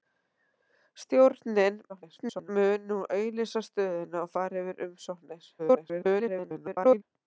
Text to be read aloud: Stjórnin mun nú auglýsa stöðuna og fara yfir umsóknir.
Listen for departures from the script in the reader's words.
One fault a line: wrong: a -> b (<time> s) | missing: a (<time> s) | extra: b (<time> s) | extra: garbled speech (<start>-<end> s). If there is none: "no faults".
extra: garbled speech (1.9-2.5 s)
extra: garbled speech (5.6-7.0 s)